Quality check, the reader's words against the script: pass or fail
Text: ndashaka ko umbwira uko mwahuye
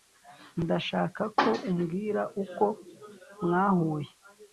pass